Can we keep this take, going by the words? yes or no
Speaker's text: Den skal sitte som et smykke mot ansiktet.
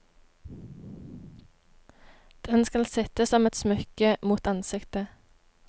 yes